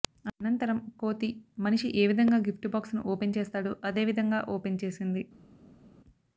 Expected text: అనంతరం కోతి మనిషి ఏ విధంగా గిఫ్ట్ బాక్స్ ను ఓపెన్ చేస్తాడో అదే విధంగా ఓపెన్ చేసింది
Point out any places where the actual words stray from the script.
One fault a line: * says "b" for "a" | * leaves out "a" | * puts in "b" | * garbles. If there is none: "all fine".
all fine